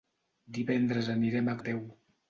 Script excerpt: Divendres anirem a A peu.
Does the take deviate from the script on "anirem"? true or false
false